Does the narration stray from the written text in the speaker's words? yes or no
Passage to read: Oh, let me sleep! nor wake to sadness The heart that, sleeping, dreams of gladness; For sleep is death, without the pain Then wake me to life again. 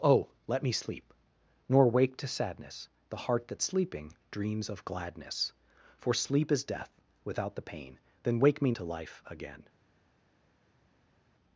no